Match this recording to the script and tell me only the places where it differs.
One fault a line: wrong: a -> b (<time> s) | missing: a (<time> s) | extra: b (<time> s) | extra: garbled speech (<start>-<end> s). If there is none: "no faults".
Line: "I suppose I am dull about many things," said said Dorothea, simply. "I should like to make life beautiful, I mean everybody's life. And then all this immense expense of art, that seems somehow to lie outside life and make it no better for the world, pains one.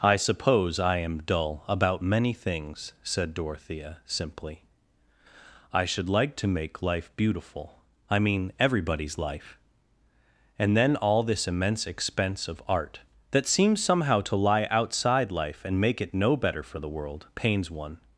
missing: said (3.3 s)